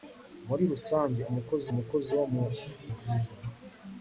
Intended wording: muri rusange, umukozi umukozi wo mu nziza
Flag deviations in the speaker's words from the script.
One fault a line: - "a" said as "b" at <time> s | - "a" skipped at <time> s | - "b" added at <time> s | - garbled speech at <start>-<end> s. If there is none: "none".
none